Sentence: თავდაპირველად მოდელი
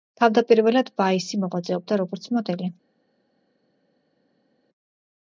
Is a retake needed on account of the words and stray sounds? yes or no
yes